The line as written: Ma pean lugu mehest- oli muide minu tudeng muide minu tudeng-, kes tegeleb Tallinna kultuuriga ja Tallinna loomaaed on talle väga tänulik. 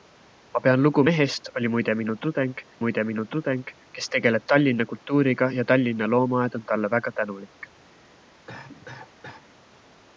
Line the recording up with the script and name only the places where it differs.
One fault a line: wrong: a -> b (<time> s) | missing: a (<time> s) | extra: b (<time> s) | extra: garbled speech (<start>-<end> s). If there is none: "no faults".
no faults